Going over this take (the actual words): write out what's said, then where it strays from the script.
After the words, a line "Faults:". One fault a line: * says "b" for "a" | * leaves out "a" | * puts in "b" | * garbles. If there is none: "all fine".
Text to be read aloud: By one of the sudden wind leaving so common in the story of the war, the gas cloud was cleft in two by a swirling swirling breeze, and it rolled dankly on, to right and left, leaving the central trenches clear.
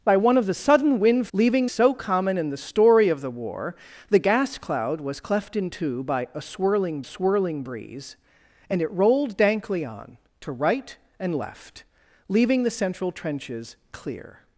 By one of the sudden wind leaving so common in the story of the war, the gas cloud was cleft in two by a swirling swirling breeze, and it rolled dankly on, to right and left, leaving the central trenches clear.
Faults:
all fine